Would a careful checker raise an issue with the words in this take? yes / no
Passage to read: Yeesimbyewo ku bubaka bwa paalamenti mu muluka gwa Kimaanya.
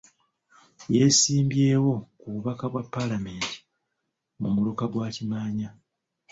no